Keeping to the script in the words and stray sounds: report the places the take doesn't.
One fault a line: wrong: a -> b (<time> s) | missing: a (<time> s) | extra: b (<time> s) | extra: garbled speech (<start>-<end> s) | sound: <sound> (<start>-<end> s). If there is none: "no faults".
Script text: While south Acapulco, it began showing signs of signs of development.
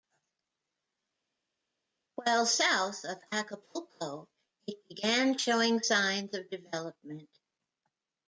extra: of (3.0 s)
missing: signs of (6.5 s)